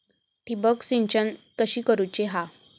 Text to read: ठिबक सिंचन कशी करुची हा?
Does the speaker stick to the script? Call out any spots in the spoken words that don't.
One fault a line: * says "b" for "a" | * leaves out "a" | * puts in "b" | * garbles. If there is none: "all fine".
all fine